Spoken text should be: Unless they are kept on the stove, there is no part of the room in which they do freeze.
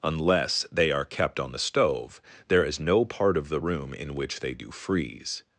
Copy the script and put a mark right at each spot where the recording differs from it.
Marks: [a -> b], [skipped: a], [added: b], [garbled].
Unless they are kept on the stove, there is no part of the room in which they do freeze.